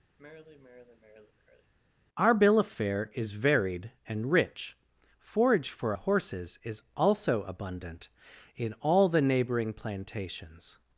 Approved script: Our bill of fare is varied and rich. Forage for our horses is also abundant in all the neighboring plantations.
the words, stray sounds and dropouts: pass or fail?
fail